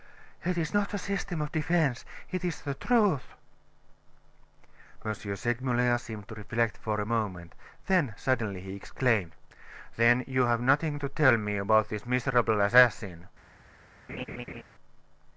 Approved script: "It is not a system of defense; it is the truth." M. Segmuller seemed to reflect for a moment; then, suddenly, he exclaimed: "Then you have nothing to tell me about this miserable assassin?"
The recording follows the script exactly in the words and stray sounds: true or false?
false